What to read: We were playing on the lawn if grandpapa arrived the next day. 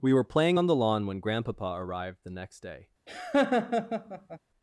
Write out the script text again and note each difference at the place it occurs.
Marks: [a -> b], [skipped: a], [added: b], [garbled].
We were playing on the lawn [if -> when] grandpapa arrived the next day.